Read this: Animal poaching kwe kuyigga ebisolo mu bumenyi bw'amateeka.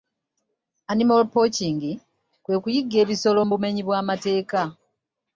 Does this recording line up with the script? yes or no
yes